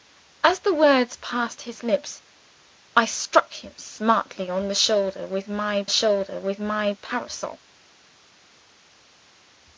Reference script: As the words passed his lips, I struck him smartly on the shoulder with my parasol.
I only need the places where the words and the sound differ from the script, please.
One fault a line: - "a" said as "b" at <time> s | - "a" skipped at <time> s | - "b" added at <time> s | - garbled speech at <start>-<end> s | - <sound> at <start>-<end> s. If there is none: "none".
- "shoulder with my" added at 5.9 s